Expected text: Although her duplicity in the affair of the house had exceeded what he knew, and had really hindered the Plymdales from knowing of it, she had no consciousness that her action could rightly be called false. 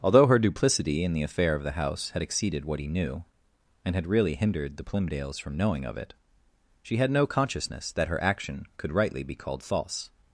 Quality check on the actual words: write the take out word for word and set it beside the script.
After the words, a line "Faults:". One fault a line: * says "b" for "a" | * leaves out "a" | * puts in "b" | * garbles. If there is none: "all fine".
Although her duplicity in the affair of the house had exceeded what he knew, and had really hindered the Plymdales from knowing of it, she had no consciousness that her action could rightly be called false.
Faults:
all fine